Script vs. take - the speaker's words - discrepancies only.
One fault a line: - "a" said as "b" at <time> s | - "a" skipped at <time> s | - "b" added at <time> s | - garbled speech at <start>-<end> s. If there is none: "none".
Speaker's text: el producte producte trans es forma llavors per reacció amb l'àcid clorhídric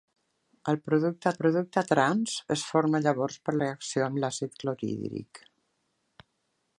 none